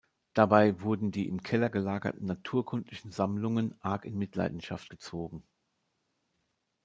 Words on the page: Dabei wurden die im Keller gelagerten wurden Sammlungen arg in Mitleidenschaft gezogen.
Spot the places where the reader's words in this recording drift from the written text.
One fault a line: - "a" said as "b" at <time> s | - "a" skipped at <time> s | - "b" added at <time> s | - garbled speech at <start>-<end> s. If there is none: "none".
- "wurden" said as "naturkundlichen" at 2.2 s